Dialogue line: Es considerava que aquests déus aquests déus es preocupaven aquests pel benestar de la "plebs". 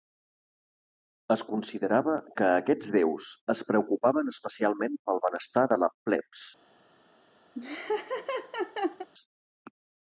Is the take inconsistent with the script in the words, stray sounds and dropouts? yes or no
yes